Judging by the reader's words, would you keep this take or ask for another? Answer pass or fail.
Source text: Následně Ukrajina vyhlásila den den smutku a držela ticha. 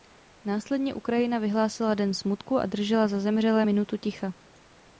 fail